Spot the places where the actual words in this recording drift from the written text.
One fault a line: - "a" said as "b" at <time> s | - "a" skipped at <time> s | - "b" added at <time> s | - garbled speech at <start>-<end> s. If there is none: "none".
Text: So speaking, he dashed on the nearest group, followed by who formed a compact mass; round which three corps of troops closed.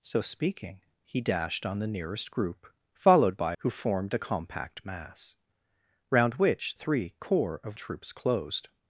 none